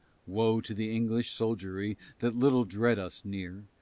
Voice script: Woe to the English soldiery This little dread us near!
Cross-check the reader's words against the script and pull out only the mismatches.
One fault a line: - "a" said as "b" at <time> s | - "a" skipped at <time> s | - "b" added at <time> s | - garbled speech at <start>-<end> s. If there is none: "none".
- "This" said as "That" at 2.2 s